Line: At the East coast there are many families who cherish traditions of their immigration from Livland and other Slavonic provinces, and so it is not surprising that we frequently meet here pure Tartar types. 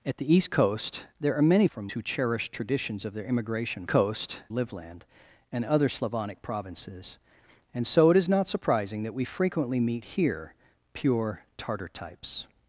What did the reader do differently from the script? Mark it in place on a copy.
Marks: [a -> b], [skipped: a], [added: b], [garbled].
At the East coast there are many [families -> from] who cherish traditions of their immigration [from -> coast] Livland and other Slavonic provinces, and so it is not surprising that we frequently meet here pure Tartar types.